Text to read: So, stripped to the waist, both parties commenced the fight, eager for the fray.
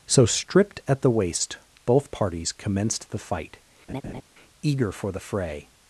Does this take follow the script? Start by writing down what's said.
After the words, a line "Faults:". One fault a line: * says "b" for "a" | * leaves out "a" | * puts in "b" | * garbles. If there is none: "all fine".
So, stripped at the waist, both parties commenced the fight, eager for the fray.
Faults:
* says "at" for "to"